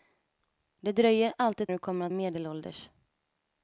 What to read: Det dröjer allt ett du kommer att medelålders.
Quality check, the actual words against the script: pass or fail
pass